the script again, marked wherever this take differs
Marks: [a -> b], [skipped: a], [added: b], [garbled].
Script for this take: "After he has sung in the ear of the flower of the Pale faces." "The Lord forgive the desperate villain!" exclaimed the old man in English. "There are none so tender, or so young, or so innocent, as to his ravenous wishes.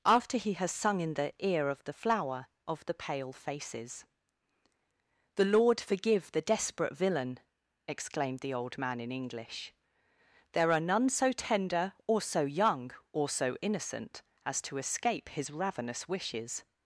"After he has sung in the ear of the flower of the Pale faces." "The Lord forgive the desperate villain!" exclaimed the old man in English. "There are none so tender, or so young, or so innocent, as to [added: escape] his ravenous wishes.